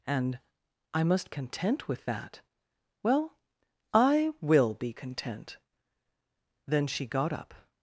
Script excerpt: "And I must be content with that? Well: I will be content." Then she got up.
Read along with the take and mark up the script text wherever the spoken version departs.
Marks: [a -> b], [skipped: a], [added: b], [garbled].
"And I must [skipped: be] content with that? Well: I will be content." Then she got up.